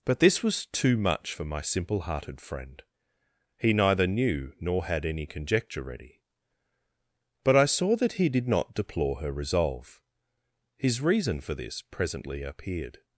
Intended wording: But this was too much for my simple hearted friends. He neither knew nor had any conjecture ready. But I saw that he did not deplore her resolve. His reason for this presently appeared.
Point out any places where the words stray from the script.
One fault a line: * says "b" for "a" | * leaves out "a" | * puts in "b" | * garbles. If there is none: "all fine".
* says "friend" for "friends"